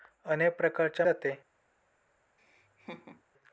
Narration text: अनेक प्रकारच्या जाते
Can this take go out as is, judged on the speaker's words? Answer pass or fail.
pass